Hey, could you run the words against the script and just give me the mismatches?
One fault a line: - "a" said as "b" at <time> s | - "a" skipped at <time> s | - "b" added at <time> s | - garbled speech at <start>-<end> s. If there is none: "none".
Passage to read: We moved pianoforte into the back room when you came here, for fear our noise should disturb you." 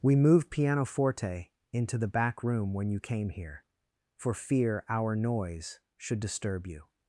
none